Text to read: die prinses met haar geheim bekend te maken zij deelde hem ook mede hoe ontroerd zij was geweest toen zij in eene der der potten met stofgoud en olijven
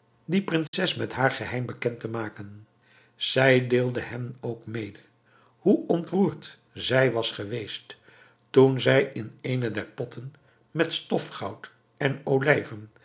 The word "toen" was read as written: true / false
true